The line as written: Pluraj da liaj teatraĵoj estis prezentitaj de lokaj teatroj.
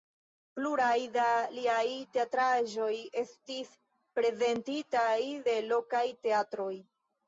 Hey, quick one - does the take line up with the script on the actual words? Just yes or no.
yes